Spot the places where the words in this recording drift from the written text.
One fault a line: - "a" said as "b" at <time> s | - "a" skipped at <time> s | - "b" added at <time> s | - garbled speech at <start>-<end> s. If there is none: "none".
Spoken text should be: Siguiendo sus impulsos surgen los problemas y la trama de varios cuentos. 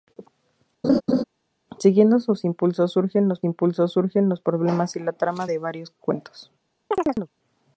- "impulsos surgen los" added at 3.4 s